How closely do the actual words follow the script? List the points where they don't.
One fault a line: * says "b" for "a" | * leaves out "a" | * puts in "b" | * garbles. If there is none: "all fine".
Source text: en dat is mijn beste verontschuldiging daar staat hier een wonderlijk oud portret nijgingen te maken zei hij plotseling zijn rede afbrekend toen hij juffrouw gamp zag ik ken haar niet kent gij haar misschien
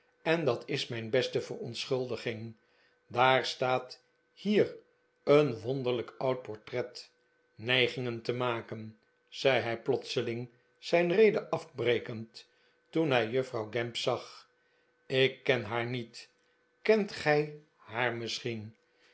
all fine